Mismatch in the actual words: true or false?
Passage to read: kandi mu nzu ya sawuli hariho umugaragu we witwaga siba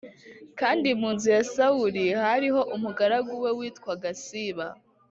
false